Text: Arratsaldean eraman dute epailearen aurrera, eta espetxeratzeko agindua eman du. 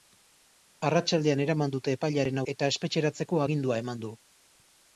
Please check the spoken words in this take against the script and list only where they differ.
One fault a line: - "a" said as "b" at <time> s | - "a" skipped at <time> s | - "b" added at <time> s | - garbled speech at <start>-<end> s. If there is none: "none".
- "aurrera" skipped at 2.4 s